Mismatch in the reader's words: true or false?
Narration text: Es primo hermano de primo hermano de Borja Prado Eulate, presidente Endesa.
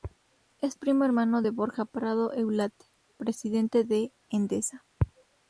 true